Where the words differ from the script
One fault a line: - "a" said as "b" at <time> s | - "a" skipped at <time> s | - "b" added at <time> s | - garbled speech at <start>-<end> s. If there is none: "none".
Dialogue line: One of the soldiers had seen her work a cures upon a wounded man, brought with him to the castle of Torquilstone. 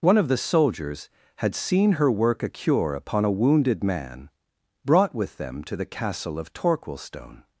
- "cures" said as "cure" at 2.5 s
- "him" said as "them" at 5.4 s